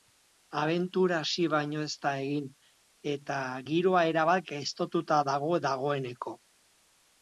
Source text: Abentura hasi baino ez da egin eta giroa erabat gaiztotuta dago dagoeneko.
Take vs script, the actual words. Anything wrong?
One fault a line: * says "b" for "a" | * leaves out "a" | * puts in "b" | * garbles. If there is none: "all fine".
all fine